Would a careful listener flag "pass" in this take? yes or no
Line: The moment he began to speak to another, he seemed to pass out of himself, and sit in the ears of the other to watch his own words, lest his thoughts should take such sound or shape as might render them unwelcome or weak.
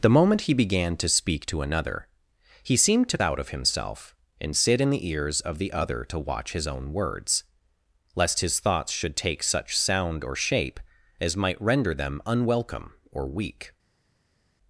yes